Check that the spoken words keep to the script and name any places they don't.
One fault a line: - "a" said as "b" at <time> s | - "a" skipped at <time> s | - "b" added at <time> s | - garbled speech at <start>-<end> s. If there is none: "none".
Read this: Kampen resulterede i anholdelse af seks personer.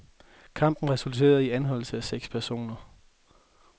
none